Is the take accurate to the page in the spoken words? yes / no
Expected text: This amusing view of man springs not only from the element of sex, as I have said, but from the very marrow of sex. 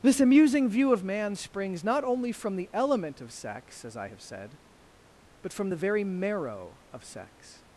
yes